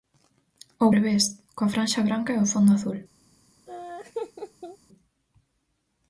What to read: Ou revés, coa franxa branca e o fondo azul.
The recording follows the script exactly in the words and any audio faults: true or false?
false